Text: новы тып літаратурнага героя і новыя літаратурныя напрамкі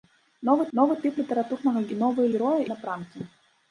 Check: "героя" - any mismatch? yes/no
yes